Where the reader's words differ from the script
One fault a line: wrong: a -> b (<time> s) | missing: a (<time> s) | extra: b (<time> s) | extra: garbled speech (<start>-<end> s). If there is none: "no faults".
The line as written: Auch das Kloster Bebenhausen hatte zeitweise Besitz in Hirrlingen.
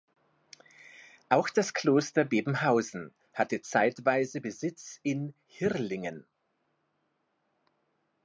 no faults